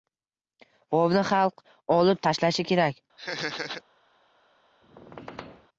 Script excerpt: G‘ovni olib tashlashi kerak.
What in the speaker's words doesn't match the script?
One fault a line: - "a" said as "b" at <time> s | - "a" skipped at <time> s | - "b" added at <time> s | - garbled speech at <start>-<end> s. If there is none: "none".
- "xalq" added at 1.3 s